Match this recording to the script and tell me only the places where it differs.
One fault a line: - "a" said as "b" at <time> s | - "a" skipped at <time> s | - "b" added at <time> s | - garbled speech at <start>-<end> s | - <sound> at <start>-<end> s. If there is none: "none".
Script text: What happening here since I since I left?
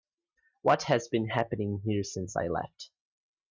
- "has been" added at 0.8 s
- "since I" skipped at 2.5 s